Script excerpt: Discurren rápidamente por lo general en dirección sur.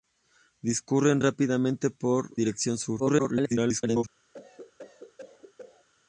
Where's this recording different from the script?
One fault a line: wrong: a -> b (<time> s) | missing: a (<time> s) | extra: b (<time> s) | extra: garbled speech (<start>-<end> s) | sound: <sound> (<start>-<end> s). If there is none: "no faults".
missing: lo general en (2.3 s)
extra: garbled speech (3.0-4.0 s)
sound: cough (4.3-5.9 s)